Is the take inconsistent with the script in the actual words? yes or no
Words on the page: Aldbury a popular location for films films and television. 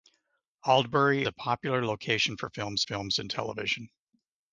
no